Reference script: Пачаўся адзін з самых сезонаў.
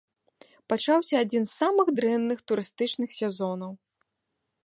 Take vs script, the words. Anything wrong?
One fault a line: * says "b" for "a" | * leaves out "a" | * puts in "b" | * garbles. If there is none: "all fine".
* puts in "дрэнных турыстычных"